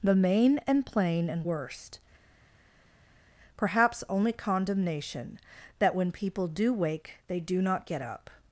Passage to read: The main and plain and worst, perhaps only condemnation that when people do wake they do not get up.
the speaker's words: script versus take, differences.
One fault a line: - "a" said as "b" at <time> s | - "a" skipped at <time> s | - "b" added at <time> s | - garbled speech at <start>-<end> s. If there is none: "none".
none